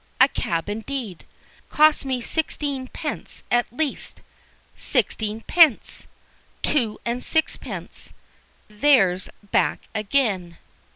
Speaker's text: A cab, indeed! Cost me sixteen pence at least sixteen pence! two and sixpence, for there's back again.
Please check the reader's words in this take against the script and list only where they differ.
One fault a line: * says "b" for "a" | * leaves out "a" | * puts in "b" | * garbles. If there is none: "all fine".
* leaves out "for"